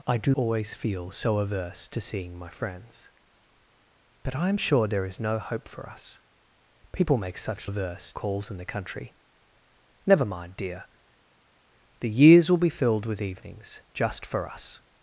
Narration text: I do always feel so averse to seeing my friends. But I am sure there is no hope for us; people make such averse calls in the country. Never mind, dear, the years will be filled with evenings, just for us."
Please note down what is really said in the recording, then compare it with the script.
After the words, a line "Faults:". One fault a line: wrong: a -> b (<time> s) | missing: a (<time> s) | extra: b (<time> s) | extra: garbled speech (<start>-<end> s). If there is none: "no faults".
I do always feel so averse to seeing my friends. But I am sure there is no hope for us; people make such averse calls in the country. Never mind, dear, the years will be filled with evenings, just for us."
Faults:
no faults